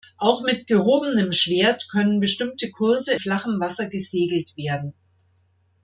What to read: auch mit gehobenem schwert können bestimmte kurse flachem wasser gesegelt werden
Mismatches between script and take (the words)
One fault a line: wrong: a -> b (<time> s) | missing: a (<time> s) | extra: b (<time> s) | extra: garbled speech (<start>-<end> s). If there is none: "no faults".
no faults